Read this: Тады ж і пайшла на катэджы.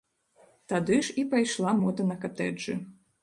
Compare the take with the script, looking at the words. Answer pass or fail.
fail